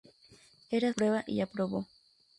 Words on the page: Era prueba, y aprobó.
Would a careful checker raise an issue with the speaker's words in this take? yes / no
no